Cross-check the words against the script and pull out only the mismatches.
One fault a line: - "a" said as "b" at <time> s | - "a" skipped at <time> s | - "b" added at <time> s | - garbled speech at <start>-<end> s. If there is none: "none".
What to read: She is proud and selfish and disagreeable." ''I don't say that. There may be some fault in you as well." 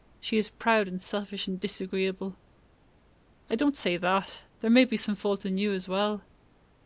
none